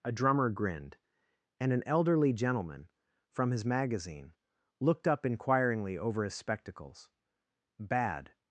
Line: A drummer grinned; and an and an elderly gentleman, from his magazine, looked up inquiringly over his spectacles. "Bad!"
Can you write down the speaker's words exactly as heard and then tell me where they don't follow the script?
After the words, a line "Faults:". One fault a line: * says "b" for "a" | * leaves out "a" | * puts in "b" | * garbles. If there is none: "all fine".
A drummer grinned; and an elderly gentleman, from his magazine, looked up inquiringly over his spectacles. "Bad!"
Faults:
* leaves out "and an"